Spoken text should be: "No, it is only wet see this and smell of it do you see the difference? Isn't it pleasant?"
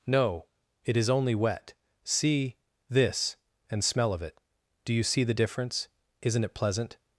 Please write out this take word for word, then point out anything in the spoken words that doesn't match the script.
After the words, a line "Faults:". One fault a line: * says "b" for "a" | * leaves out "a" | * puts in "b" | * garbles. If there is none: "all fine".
"No, it is only wet see this and smell of it do you see the difference? Isn't it pleasant?"
Faults:
all fine